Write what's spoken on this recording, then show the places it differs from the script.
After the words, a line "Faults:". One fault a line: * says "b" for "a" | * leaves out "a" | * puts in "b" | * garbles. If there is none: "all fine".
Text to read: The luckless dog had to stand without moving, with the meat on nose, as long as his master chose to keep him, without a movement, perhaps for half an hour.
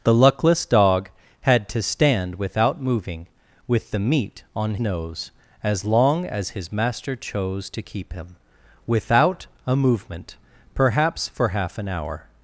The luckless dog had to stand without moving, with the meat on nose, as long as his master chose to keep him, without a movement, perhaps for half an hour.
Faults:
all fine